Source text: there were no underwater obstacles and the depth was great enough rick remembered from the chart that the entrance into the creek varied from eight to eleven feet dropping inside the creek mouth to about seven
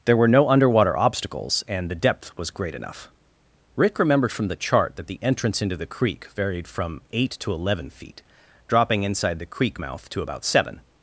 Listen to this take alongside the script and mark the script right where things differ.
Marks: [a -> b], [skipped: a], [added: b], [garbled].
there were no underwater obstacles and the depth was great enough rick remembered from the chart that the entrance into the creek varied from eight to eleven feet dropping inside the creek mouth to about seven